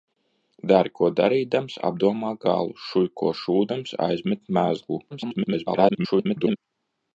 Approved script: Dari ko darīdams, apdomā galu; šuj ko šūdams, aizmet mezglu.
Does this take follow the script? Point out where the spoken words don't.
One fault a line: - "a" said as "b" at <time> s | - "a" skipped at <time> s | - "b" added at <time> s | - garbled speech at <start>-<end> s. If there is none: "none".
- garbled speech at 5.1-6.6 s